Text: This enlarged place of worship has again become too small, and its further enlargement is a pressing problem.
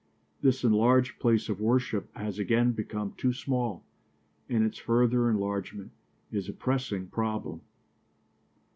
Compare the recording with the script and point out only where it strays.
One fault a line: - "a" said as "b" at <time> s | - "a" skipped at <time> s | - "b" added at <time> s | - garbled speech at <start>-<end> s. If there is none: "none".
none